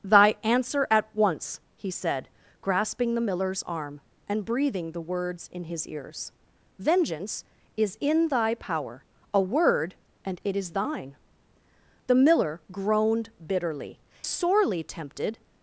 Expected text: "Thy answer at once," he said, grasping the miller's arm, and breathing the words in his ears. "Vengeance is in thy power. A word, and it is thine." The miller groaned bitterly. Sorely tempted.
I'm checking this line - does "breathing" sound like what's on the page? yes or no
yes